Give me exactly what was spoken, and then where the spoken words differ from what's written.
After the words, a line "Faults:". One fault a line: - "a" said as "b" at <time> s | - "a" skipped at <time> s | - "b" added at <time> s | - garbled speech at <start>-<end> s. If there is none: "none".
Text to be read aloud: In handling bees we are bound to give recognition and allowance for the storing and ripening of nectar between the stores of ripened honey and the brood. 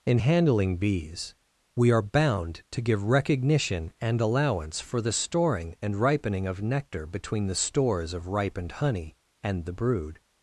In handling bees we are bound to give recognition and allowance for the storing and ripening of nectar between the stores of ripened honey and the brood.
Faults:
none